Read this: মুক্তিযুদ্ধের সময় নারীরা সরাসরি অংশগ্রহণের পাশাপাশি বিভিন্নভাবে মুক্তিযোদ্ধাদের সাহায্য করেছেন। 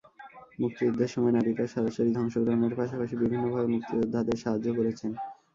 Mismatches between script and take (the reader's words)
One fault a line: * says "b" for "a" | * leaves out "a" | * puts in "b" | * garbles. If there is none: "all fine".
all fine